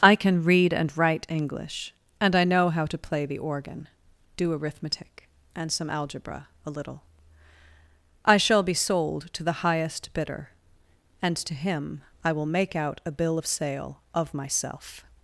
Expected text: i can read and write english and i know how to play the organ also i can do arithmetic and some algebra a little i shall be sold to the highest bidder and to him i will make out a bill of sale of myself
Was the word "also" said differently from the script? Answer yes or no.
yes